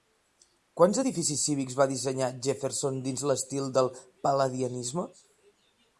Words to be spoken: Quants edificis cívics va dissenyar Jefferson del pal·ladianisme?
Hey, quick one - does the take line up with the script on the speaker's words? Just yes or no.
no